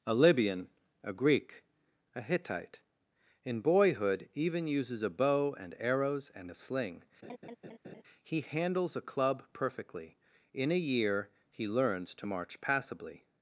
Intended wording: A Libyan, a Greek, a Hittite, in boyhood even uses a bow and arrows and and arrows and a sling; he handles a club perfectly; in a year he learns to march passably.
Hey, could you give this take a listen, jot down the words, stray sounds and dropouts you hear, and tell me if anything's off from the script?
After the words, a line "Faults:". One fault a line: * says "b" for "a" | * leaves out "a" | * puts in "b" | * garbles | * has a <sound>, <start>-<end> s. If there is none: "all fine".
A Libyan, a Greek, a Hittite, in boyhood even uses a bow and arrows and a sling; he handles a club perfectly; in a year he learns to march passably.
Faults:
* leaves out "and arrows and"
* has a laugh, 7.2-8.0 s